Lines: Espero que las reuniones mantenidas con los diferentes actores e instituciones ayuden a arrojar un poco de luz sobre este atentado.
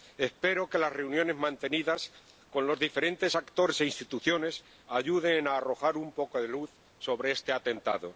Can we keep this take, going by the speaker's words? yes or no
yes